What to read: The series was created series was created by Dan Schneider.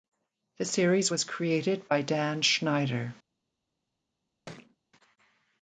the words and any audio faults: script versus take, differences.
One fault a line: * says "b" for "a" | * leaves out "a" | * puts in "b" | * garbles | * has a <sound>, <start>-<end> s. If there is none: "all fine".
* leaves out "series was created"
* has a thud, 4.5-4.8 s